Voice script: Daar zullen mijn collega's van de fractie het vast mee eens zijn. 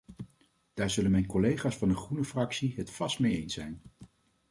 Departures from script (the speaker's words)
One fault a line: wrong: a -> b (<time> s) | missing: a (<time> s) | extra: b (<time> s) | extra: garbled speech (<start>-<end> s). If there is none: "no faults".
extra: groene (1.9 s)